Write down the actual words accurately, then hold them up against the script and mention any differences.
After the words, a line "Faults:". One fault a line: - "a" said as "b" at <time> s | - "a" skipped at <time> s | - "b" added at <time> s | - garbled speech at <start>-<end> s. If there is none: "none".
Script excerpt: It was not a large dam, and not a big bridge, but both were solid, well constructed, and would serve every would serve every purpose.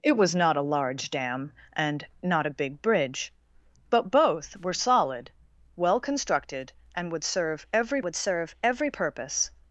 It was not a large dam, and not a big bridge, but both were solid, well constructed, and would serve every would serve every purpose.
Faults:
none